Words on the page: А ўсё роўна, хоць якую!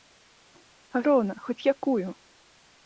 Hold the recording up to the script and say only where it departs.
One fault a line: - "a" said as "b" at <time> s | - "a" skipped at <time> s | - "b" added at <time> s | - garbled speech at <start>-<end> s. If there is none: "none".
- "ўсё" skipped at 1.0 s